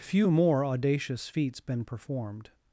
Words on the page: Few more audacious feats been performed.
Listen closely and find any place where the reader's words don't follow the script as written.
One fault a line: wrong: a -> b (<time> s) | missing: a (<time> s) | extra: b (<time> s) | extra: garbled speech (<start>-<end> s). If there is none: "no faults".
no faults